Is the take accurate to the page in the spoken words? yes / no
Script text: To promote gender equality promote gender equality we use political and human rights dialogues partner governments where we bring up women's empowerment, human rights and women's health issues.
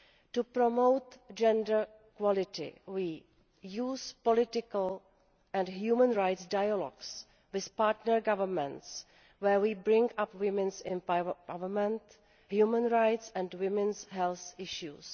no